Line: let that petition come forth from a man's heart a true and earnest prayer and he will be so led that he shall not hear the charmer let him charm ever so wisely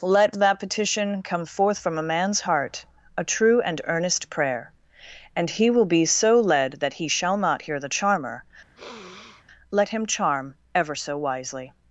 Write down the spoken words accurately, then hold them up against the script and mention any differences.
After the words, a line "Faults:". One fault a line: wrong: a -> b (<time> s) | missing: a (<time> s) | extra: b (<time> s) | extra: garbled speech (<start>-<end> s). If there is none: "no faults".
let that petition come forth from a man's heart a true and earnest prayer and he will be so led that he shall not hear the charmer let him charm ever so wisely
Faults:
no faults